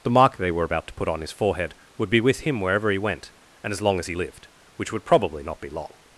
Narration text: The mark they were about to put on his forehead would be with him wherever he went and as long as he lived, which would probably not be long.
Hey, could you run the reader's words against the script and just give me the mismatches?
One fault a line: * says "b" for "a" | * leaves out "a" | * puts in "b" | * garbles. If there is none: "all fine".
all fine